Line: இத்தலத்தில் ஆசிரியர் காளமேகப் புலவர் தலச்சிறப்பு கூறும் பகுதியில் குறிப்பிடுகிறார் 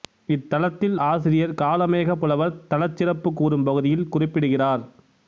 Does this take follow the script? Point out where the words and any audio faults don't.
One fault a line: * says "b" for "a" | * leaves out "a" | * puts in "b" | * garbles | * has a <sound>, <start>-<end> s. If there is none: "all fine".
all fine